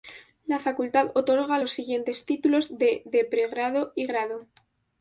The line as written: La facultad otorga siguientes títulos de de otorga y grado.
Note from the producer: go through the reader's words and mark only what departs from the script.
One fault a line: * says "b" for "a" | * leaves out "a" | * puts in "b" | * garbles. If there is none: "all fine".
* puts in "los"
* says "pregrado" for "otorga"